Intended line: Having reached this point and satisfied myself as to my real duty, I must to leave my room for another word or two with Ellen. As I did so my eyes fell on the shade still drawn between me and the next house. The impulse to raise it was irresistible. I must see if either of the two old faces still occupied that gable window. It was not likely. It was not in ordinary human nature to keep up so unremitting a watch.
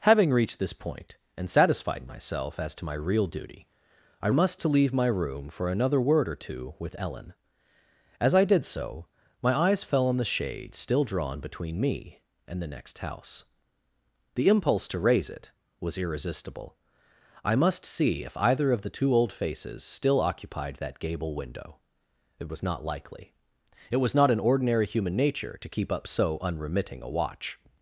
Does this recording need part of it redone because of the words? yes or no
no